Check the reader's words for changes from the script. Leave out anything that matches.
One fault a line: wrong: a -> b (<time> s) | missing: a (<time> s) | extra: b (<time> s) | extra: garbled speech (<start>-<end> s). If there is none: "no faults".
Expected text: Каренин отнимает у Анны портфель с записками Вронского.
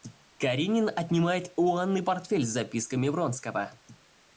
no faults